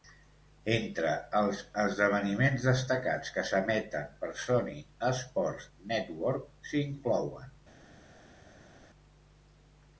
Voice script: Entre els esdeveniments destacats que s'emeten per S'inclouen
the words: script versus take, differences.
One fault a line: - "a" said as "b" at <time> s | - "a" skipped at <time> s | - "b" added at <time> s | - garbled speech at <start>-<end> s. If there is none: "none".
- "Sony Sports Network" added at 4.5 s